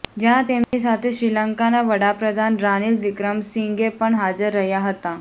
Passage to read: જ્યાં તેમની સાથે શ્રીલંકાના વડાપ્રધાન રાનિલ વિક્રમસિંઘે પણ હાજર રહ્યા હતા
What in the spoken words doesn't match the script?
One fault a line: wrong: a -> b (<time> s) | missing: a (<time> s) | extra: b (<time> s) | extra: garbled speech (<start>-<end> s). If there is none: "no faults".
no faults